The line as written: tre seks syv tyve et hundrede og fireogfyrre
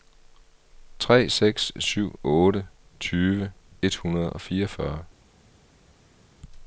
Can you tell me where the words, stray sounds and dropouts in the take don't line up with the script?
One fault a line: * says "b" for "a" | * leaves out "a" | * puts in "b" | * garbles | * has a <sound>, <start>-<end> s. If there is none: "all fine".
* puts in "otte"